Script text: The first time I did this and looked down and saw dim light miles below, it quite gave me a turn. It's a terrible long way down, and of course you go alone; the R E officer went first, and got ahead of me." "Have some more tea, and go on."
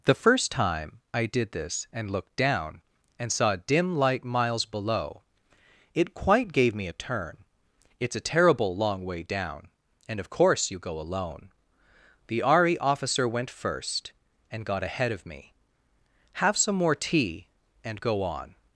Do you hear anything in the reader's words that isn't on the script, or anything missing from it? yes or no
no